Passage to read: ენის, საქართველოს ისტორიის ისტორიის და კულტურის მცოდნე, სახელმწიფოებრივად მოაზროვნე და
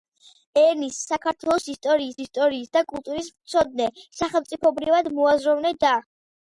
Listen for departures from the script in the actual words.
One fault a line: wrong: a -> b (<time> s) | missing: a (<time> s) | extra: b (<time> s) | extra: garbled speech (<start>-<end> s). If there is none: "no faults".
no faults